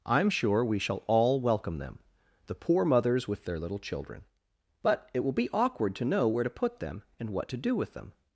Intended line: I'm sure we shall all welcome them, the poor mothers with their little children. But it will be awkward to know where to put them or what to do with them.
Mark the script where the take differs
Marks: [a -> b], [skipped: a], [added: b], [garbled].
I'm sure we shall all welcome them, the poor mothers with their little children. But it will be awkward to know where to put them [or -> and] what to do with them.